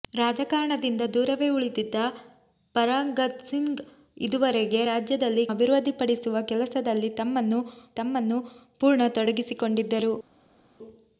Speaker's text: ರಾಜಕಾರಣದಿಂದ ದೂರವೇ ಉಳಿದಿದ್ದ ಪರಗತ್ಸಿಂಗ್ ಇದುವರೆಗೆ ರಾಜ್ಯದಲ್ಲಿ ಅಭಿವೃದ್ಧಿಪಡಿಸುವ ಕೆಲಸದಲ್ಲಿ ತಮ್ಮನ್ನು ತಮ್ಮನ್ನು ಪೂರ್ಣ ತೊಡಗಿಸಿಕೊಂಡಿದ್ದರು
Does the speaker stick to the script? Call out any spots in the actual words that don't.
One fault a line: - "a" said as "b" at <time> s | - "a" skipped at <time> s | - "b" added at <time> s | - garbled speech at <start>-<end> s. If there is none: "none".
none